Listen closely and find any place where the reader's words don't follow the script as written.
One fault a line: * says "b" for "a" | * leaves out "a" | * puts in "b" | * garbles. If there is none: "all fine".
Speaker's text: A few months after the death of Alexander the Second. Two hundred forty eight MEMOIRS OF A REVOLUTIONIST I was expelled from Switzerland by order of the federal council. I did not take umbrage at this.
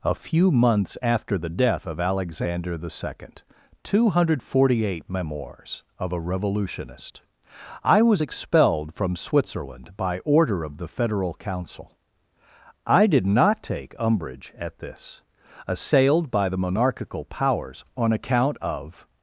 * puts in "Assailed by the monarchical powers on account of"